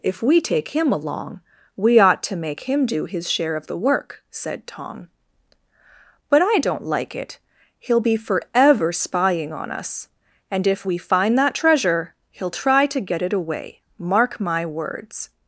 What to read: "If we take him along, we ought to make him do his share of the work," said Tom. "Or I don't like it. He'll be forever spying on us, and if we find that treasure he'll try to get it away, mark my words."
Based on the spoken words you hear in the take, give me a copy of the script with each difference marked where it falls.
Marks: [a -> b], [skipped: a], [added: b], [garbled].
"If we take him along, we ought to make him do his share of the work," said Tom. ["Or -> But] I don't like it. He'll be forever spying on us, and if we find that treasure he'll try to get it away, mark my words."